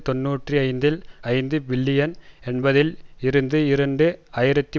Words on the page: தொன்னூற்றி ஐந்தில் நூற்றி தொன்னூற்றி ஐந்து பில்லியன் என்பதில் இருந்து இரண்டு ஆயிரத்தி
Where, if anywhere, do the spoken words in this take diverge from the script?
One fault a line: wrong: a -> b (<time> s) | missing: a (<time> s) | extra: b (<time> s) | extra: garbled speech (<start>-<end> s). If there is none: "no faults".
missing: நூற்றி தொன்னூற்றி (1.0 s)